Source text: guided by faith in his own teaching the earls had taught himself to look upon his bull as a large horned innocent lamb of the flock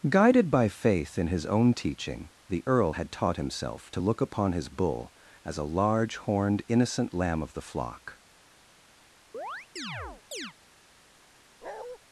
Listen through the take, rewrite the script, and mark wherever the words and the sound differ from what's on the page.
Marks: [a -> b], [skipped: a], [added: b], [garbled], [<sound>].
guided by faith in his own teaching the [earls -> earl] had taught himself to look upon his bull as a large horned innocent lamb of the flock [chirp] [bark]